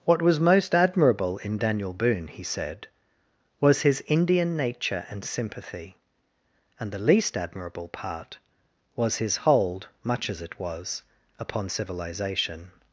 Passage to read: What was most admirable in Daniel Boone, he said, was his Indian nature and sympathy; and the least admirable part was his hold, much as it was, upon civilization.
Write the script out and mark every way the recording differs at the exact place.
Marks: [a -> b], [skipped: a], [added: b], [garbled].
What was most admirable in Daniel Boone, he said, was his Indian nature and sympathy; and the least admirable part was his hold, much as it was, upon civilization.